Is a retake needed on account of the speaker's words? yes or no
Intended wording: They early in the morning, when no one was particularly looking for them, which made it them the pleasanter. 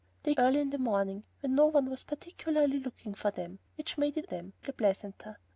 no